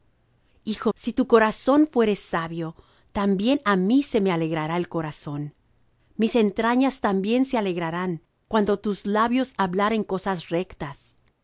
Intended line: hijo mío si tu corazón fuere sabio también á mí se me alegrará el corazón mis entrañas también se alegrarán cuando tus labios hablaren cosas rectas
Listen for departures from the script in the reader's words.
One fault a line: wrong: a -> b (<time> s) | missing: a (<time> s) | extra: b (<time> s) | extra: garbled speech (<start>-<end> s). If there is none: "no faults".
missing: mío (0.9 s)